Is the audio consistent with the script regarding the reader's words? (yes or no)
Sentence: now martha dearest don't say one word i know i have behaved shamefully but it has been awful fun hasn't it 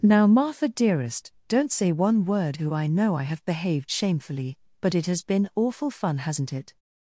no